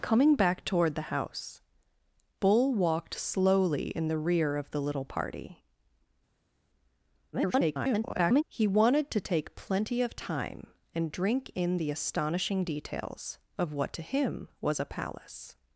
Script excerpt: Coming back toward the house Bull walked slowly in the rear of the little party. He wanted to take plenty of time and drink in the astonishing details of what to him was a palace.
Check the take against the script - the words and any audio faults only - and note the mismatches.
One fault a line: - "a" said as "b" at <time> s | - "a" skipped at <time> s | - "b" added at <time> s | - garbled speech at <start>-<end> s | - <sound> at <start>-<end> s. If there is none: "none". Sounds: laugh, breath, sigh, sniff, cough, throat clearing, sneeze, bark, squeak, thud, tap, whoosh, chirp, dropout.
- garbled speech at 7.3-8.4 s